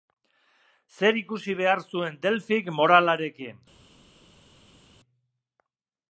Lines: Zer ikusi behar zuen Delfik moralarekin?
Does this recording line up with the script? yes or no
yes